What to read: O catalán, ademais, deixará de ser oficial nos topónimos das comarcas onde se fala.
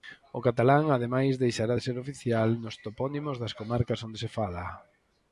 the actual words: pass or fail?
pass